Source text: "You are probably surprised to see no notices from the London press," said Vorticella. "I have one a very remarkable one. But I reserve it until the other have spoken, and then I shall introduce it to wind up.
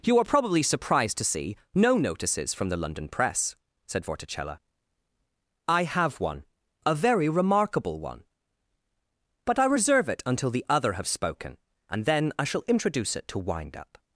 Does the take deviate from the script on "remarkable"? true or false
false